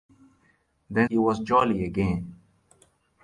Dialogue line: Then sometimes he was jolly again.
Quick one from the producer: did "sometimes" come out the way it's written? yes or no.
no